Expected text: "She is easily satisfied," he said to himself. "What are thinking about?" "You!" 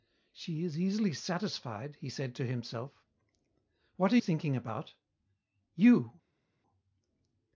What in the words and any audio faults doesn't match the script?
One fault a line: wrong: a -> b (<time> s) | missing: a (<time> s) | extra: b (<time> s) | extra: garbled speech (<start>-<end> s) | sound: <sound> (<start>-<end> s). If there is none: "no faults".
no faults